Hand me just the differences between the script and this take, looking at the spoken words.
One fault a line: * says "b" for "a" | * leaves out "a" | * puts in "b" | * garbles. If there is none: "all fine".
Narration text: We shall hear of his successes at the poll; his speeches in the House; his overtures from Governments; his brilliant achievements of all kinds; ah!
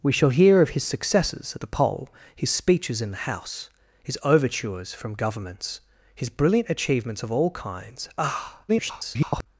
* garbles